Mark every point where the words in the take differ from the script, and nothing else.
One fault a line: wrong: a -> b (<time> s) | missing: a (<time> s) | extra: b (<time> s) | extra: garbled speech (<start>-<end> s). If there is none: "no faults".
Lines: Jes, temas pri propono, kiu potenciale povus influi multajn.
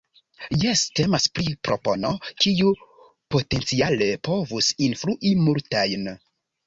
no faults